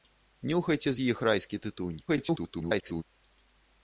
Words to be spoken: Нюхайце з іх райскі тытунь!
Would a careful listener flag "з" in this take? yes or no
no